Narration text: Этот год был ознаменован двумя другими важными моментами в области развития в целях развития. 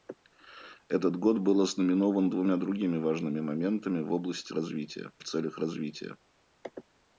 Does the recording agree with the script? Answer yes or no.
yes